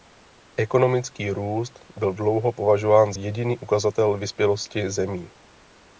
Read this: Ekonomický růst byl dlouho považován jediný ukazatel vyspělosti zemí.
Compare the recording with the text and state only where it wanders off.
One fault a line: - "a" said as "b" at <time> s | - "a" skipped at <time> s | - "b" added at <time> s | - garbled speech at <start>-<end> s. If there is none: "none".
none